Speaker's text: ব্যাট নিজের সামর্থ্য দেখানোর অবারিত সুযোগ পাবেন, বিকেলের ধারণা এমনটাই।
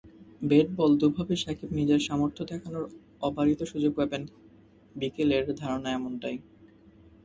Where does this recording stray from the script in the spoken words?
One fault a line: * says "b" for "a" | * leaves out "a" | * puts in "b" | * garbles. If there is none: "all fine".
* puts in "বল দুভাবেই সাকিব"